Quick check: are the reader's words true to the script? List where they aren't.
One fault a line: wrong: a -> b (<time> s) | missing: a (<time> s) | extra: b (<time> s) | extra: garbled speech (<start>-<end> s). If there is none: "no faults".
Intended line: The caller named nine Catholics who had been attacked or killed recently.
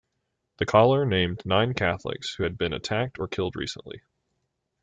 no faults